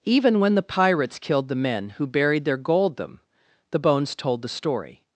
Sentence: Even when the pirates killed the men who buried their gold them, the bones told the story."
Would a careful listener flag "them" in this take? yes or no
no